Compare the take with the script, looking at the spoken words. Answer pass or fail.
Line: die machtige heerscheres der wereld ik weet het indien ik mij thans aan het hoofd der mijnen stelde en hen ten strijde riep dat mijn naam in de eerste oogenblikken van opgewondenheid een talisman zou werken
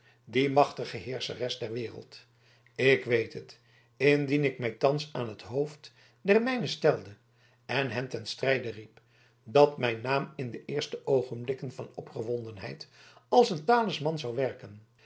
fail